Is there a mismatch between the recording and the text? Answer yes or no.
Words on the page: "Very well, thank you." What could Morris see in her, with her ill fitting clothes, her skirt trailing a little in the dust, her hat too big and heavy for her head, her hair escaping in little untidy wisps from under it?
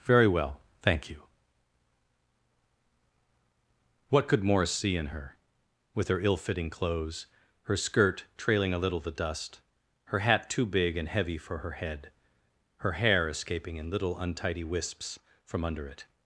yes